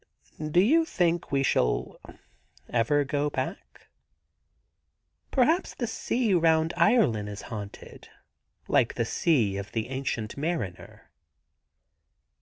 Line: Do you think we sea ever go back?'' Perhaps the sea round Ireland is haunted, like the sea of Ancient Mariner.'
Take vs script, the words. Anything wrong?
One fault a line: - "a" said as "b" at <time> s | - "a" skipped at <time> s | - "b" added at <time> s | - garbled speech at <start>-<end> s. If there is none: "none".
- "sea" said as "shall" at 1.4 s
- "the" added at 9.7 s